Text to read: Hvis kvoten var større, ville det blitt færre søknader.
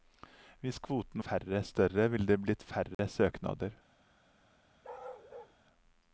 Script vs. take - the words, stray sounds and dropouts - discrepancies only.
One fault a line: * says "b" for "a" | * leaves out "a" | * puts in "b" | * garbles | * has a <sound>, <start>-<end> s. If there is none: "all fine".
* says "færre" for "var"
* has a dropout, 2.9-3.0 s
* has a bark, 4.8-5.6 s